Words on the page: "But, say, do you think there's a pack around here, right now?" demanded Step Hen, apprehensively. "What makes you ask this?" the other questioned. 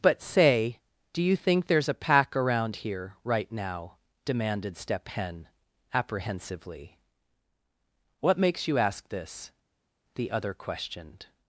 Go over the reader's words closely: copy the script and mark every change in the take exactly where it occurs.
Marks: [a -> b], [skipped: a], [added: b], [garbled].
"But, say, do you think there's a pack around here, right now?" demanded Step Hen, apprehensively. "What makes you ask this?" the other questioned.